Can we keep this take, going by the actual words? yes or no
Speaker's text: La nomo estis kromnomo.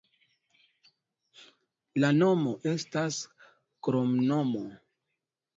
no